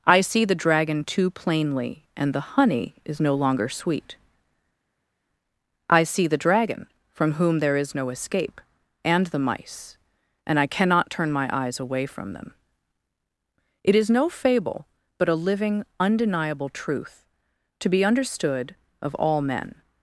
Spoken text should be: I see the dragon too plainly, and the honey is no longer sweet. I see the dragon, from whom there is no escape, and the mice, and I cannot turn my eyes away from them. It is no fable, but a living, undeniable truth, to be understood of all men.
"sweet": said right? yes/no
yes